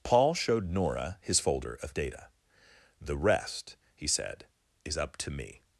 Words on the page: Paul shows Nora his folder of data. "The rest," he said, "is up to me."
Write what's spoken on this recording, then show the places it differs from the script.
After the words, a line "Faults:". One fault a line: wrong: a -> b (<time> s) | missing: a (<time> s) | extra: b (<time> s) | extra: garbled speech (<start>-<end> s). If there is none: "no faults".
Paul showed Nora his folder of data. "The rest," he said, "is up to me."
Faults:
wrong: shows -> showed (0.3 s)